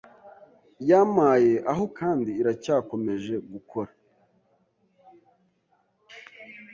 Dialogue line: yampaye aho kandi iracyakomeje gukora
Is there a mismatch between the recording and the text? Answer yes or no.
no